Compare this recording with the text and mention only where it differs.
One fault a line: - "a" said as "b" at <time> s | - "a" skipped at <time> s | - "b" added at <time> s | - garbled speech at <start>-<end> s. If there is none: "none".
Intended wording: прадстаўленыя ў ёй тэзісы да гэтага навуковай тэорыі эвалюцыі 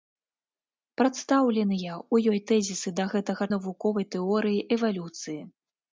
none